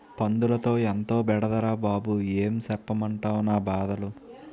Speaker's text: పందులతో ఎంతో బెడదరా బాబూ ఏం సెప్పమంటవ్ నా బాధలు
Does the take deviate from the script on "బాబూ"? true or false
false